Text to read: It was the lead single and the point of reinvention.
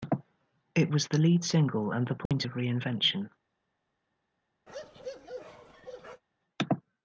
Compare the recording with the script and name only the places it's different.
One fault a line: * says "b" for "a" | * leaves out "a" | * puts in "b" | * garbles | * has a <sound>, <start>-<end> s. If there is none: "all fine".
* has a dropout, 2.3-2.3 s
* has a bark, 4.7-6.2 s